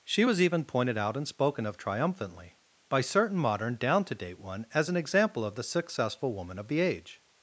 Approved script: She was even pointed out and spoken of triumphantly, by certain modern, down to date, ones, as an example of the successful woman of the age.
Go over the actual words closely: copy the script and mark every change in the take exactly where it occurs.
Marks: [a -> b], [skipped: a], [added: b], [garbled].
She was even pointed out and spoken of triumphantly, by certain modern, down to date, [ones, -> one] as an example of the successful woman of the age.